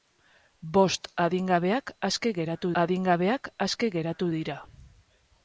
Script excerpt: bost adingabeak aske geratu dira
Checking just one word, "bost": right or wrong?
right